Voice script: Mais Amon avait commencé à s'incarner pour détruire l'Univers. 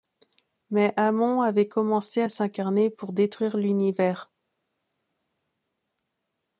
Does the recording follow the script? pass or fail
pass